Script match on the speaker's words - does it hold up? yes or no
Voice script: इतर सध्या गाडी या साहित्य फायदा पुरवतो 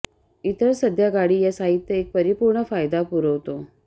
no